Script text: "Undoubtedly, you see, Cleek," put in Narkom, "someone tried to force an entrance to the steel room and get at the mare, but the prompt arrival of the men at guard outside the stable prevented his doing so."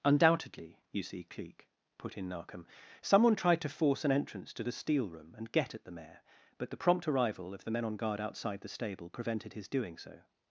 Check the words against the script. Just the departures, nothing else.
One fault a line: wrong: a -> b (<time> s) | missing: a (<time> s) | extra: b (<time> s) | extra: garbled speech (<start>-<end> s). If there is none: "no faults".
wrong: at -> on (7.8 s)